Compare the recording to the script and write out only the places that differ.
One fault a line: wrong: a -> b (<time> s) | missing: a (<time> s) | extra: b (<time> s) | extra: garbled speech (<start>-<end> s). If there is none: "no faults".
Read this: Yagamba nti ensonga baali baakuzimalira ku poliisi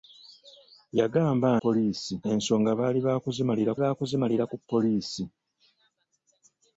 wrong: nti -> poliisi (1.6 s)
extra: baakuzimalira (3.8 s)